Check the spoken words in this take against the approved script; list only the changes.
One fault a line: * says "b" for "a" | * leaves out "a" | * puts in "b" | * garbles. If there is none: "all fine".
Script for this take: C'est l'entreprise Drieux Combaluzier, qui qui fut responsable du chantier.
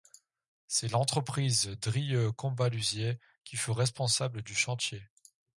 * leaves out "qui"